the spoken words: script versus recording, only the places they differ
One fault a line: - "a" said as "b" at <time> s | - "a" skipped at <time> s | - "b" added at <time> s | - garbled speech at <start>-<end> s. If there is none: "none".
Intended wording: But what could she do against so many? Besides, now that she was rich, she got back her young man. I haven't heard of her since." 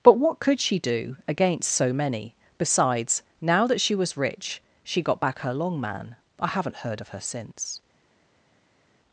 - "young" said as "long" at 5.5 s